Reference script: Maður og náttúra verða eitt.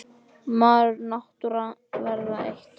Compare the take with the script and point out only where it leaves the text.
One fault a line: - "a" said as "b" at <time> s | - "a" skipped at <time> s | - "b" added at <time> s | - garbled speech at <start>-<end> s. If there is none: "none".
none